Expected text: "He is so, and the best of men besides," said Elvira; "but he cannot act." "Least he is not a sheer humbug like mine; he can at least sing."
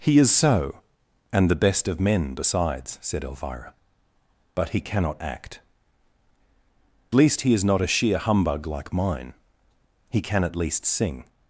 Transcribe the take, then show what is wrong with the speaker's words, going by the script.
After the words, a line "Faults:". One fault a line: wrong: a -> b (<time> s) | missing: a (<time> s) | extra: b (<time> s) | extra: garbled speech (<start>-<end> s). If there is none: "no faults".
"He is so, and the best of men besides," said Elvira; "but he cannot act." "Least he is not a sheer humbug like mine; he can at least sing."
Faults:
no faults